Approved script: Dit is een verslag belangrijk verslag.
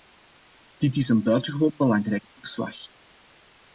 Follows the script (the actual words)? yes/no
no